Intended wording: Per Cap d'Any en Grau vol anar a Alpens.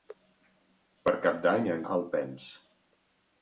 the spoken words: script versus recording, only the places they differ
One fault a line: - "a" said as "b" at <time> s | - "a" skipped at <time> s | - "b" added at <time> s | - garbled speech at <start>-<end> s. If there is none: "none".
- "Grau vol anar" skipped at 1.9 s